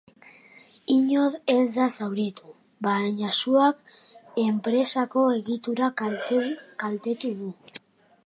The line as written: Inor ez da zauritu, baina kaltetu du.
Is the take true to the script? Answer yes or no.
no